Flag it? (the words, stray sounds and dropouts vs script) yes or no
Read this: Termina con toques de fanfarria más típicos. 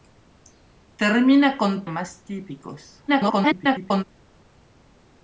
yes